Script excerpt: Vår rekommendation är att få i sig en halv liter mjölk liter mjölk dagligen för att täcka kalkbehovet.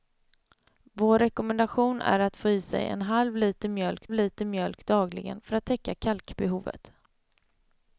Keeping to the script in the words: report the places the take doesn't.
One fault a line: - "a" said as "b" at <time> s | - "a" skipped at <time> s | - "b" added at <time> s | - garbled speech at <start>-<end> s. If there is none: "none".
none